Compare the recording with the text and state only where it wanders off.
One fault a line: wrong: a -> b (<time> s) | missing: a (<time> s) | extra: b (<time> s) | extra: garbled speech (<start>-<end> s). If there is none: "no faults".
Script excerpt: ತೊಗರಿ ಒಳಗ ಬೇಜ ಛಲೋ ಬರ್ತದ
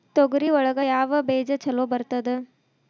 extra: ಯಾವ (0.9 s)